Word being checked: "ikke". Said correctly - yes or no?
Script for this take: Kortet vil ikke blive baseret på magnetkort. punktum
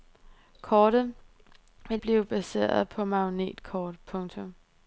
no